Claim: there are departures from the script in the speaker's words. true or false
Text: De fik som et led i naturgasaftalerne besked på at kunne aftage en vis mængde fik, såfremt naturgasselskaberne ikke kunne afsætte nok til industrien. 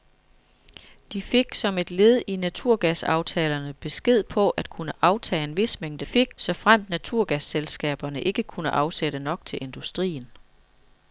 false